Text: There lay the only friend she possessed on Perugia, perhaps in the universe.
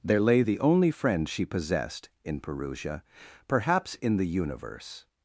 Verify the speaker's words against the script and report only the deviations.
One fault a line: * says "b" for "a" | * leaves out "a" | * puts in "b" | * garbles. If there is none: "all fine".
* says "in" for "on"